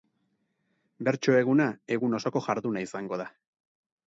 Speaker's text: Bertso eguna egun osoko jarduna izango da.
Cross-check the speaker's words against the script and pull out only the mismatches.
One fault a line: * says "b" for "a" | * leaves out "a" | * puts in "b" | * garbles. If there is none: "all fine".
all fine